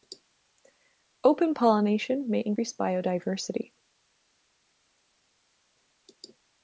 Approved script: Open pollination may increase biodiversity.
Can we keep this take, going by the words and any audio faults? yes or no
yes